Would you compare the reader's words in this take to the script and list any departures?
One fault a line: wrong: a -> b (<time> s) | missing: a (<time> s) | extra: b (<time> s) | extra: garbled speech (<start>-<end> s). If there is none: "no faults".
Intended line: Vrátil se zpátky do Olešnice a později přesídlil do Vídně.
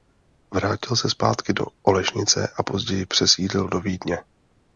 no faults